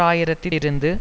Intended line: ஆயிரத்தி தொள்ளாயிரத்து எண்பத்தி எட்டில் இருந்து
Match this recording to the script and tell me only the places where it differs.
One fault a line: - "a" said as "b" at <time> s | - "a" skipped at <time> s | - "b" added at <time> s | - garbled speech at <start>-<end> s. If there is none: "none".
- "தொள்ளாயிரத்து எண்பத்தி எட்டில்" skipped at 0.5 s